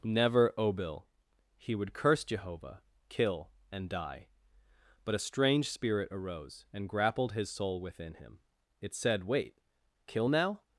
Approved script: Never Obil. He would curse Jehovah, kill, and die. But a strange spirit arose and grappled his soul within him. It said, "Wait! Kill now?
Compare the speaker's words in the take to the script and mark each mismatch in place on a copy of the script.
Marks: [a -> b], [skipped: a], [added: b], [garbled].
Never Obil. He would curse Jehovah, kill, and die. But a strange spirit arose and grappled his soul within him. It said, "Wait! Kill now?